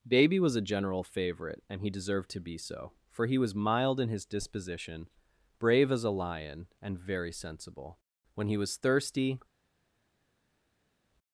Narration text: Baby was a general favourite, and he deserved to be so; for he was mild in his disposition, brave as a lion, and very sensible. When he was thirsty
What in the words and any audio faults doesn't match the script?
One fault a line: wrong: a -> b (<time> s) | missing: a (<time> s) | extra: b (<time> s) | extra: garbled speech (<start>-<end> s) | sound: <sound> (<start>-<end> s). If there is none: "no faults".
no faults